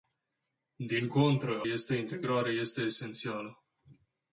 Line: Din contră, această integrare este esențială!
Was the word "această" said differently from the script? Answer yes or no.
yes